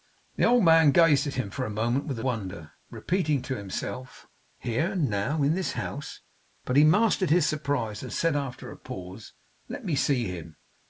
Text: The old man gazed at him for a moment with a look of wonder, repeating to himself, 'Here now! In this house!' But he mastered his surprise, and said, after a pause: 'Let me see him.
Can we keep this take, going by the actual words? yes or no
no